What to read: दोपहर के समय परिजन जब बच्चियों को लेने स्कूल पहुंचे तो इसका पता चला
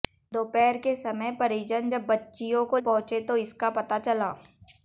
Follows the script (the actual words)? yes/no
no